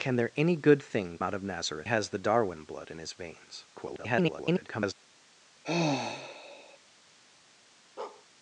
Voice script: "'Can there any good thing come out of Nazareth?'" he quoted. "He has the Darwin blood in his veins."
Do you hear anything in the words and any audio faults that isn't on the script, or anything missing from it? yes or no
yes